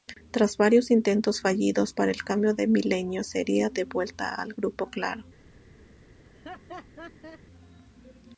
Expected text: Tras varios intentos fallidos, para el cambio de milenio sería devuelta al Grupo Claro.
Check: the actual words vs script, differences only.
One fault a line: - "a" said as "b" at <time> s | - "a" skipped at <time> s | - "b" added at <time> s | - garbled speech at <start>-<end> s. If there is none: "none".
none